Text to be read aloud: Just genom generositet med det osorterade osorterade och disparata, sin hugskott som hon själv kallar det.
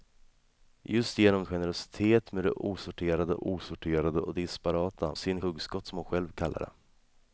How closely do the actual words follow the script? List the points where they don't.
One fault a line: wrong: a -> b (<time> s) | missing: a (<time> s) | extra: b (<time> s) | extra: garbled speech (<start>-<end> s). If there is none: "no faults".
no faults